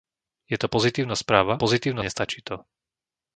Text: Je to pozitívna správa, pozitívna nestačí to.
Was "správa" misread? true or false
false